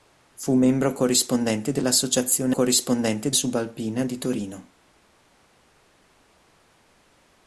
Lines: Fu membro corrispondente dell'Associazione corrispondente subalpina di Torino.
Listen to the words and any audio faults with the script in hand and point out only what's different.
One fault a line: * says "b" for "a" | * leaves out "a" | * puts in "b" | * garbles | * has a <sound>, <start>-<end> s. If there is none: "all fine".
all fine